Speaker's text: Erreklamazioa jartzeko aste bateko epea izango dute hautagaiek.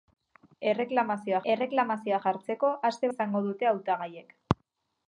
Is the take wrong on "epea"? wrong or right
wrong